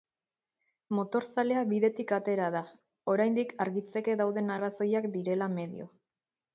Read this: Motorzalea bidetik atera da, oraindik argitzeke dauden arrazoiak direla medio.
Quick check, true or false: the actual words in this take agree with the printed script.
true